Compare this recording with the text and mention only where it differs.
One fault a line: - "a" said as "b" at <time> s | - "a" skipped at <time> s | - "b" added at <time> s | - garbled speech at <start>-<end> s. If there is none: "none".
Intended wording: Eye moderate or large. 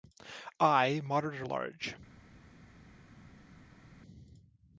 none